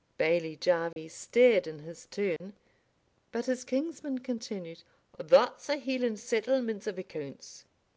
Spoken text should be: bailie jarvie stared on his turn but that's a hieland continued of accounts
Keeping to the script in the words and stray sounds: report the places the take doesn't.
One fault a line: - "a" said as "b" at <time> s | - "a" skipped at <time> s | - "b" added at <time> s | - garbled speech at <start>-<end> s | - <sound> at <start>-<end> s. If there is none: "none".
- dropout at 0.9-1.0 s
- "on" said as "in" at 1.7 s
- dropout at 2.4-2.4 s
- "his kinsman continued" added at 3.5 s
- "continued" said as "settlement" at 6.2 s